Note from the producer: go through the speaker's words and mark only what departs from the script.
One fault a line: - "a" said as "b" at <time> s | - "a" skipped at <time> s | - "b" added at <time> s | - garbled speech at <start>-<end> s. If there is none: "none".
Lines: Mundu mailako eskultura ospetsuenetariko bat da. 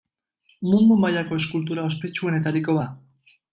- "bat" skipped at 2.8 s